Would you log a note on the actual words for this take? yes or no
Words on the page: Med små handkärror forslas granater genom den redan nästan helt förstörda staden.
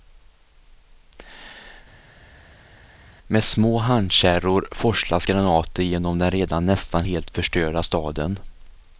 no